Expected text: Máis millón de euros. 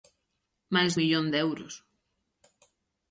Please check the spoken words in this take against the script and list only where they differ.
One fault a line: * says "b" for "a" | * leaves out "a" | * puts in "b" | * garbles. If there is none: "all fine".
all fine